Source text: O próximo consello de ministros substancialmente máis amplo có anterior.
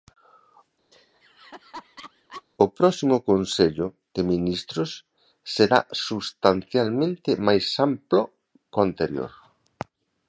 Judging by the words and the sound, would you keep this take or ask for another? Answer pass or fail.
fail